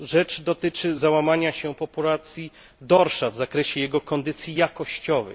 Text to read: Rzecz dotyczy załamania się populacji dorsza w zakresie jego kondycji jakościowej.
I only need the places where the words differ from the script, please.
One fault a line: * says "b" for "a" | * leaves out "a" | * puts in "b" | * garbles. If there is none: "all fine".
all fine